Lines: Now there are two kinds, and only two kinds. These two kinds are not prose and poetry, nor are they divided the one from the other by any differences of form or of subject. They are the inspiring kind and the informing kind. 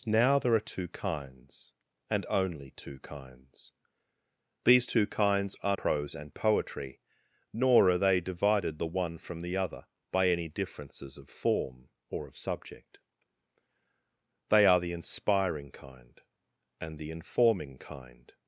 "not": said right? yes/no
no